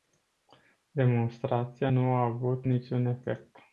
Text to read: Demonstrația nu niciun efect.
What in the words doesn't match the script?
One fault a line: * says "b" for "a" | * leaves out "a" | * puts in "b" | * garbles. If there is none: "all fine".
* puts in "a avut"